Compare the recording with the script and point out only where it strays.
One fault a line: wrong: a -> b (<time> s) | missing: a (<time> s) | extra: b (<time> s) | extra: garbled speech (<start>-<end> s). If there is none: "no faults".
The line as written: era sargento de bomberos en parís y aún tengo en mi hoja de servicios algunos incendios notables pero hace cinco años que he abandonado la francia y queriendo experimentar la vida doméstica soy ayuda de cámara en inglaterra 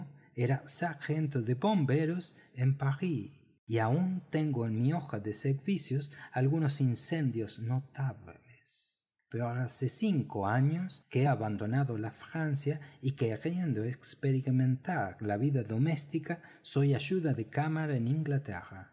no faults